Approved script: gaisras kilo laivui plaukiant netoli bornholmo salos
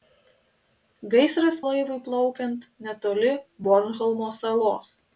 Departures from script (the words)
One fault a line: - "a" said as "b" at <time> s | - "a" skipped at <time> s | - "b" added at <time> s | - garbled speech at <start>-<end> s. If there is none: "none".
- "kilo" skipped at 1.6 s